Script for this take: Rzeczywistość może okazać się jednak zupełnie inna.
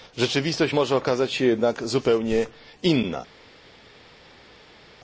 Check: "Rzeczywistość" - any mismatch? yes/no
no